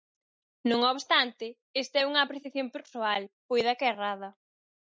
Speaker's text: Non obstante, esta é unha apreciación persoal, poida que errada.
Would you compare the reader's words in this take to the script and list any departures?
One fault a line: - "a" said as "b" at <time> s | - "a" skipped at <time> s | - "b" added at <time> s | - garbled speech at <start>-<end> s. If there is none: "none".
none